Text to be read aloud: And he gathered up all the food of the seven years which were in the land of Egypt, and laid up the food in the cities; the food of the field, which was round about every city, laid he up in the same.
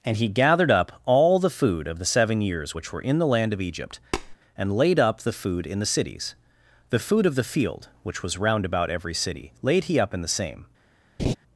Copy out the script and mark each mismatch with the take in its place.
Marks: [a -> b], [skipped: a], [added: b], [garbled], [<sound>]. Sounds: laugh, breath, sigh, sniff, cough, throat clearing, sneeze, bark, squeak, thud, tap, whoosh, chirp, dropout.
And he gathered up all the food of the seven years which were in the land of Egypt, [tap] and laid up the food in the cities; the food of the field, which was round about every city, laid he up in the same. [laugh]